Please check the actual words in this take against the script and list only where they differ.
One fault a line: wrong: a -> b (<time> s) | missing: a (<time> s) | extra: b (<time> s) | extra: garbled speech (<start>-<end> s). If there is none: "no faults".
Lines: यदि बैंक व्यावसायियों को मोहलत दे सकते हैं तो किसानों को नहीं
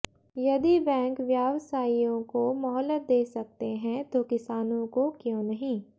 extra: क्यों (5.2 s)